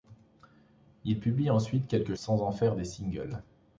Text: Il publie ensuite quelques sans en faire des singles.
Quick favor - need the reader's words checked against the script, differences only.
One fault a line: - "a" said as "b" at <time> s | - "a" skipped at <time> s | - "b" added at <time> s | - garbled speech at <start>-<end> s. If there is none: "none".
none